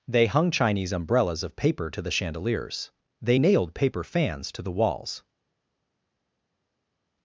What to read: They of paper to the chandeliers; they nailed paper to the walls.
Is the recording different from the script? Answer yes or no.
yes